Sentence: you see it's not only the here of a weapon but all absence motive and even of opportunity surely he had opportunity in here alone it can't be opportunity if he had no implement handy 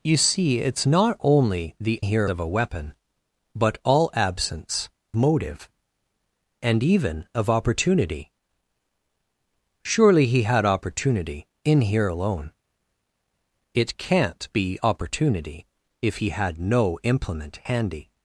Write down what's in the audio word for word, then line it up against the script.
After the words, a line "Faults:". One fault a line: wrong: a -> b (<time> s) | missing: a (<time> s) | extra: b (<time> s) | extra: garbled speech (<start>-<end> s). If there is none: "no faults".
you see it's not only the here of a weapon but all absence motive and even of opportunity surely he had opportunity in here alone it can't be opportunity if he had no implement handy
Faults:
no faults